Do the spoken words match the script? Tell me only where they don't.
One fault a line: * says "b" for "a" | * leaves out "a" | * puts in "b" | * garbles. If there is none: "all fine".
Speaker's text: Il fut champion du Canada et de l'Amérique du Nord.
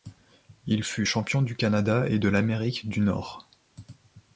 all fine